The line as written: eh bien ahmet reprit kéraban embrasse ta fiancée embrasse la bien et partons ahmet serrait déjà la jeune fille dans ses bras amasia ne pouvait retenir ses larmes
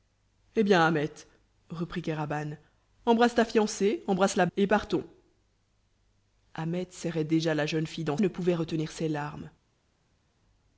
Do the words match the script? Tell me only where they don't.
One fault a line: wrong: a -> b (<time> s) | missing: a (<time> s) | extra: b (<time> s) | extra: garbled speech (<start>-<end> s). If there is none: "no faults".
missing: bien (4.5 s)
missing: ses bras amasia (8.2 s)